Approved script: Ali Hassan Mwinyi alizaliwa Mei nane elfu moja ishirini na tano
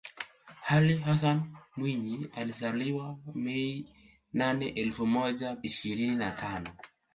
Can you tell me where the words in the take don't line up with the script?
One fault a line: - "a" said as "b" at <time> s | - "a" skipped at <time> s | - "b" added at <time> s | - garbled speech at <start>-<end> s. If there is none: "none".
none